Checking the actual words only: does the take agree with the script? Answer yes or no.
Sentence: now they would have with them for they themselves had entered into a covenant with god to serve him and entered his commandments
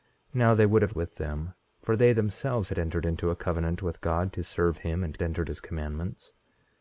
yes